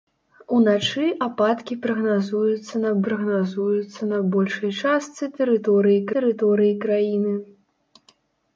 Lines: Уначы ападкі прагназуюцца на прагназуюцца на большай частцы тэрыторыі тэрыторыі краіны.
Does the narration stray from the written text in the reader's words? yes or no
no